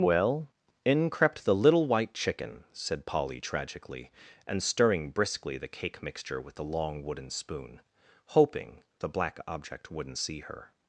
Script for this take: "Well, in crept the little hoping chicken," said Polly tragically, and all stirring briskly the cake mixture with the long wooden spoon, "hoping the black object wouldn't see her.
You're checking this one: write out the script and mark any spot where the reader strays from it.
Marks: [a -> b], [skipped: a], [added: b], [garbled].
"Well, in crept the little [hoping -> white] chicken," said Polly tragically, and [skipped: all] stirring briskly the cake mixture with the long wooden spoon, "hoping the black object wouldn't see her.